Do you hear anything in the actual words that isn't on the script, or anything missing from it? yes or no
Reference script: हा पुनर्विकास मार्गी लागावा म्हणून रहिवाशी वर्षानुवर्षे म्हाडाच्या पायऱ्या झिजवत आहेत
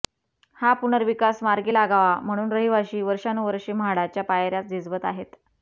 no